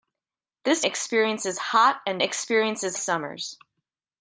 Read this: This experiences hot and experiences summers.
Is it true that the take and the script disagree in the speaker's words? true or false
false